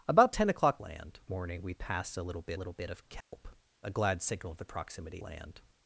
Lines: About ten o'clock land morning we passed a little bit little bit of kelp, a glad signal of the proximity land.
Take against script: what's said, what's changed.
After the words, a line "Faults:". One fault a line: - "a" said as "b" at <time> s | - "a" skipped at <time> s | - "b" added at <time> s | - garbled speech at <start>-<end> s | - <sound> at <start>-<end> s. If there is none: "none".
About ten o'clock land morning we passed a little bit little bit of kelp, a glad signal of the proximity land.
Faults:
- dropout at 3.2-3.3 s